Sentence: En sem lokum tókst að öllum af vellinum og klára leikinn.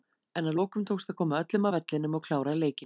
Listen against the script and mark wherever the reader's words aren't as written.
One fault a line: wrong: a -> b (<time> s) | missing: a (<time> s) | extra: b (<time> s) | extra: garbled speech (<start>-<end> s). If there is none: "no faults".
wrong: sem -> að (0.5 s)
extra: koma (1.2 s)